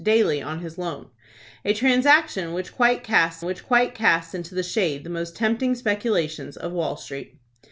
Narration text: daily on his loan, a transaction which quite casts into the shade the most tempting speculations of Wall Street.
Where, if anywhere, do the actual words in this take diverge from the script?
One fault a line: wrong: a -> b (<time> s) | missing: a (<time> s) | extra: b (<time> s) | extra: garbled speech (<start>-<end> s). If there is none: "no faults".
extra: which quite casts (3.4 s)